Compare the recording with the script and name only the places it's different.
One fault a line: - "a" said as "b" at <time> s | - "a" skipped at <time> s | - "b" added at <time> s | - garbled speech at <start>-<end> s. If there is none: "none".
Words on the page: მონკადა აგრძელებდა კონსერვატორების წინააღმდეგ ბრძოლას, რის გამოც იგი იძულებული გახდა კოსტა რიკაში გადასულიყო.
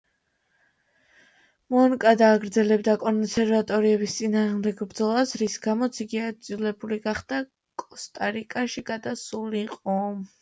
none